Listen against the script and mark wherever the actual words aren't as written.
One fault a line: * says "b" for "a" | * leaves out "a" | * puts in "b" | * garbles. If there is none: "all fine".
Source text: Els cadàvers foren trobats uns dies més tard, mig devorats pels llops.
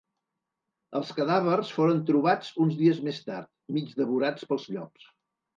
all fine